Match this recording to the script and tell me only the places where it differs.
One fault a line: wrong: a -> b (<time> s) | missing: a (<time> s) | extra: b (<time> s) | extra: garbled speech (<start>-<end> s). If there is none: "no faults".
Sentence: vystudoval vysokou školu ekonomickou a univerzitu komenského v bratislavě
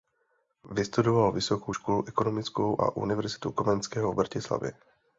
no faults